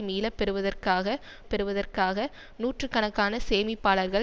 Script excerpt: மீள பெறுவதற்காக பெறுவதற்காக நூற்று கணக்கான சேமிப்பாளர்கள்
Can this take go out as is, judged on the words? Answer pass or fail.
pass